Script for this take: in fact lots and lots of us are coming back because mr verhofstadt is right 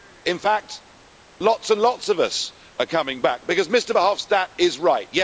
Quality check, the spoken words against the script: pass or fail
pass